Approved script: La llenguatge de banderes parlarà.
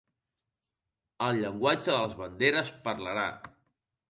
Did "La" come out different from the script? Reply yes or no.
yes